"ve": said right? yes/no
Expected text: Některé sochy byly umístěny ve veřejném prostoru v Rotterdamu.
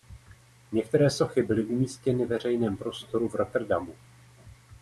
no